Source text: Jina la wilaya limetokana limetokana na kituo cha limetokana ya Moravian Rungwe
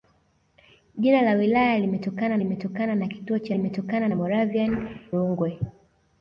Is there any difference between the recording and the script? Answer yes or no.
no